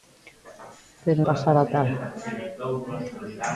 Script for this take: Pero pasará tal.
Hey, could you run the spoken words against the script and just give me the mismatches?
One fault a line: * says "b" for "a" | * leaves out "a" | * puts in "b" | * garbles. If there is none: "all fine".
all fine